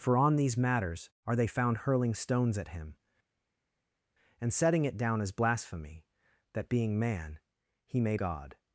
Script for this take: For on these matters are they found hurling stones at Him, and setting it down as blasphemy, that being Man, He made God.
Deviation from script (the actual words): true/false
false